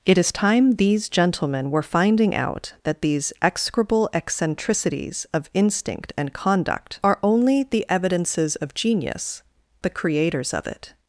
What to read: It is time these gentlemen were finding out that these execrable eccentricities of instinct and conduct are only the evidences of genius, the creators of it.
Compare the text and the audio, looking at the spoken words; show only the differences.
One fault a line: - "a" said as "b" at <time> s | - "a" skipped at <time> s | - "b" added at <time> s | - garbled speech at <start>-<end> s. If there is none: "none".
none